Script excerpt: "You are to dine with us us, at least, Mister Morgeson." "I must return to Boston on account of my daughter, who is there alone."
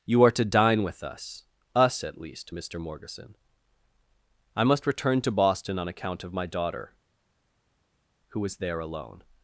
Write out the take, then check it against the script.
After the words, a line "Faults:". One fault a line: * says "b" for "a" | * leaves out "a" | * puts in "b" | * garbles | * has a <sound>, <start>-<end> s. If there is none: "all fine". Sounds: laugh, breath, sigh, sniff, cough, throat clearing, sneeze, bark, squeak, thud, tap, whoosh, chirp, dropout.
"You are to dine with us us, at least, Mister Morgeson." "I must return to Boston on account of my daughter, who is there alone."
Faults:
all fine